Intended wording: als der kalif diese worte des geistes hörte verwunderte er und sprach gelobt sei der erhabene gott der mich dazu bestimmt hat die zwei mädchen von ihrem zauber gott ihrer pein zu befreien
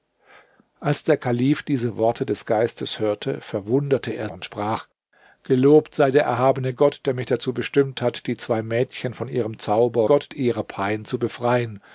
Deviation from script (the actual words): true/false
false